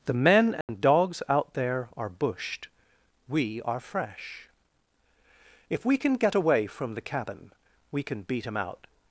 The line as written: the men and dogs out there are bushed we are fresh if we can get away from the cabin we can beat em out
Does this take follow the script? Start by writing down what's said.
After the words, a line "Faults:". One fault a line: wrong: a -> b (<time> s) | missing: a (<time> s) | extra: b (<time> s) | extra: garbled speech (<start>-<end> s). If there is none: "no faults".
the men and dogs out there are bushed we are fresh if we can get away from the cabin we can beat em out
Faults:
no faults